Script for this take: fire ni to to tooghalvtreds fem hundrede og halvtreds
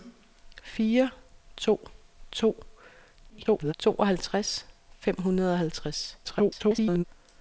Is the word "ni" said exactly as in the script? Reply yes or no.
no